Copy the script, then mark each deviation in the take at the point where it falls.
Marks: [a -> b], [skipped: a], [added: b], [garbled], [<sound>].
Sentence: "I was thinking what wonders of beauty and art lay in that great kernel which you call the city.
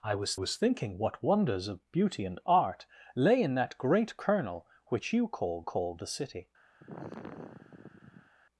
"I was [added: was] thinking what wonders of beauty and art lay in that great kernel which you call [added: call] the city. [sigh]